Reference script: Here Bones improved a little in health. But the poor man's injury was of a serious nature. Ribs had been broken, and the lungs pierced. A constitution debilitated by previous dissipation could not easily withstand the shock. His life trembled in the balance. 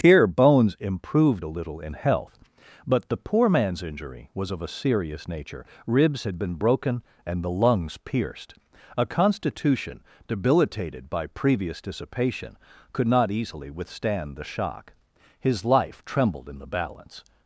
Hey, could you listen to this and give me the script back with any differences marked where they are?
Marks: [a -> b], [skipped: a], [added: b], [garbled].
Here Bones improved a little in health. But the poor man's injury was of a serious nature. Ribs had been broken, and the lungs pierced. A constitution debilitated by previous dissipation could not easily withstand the shock. His life trembled in the balance.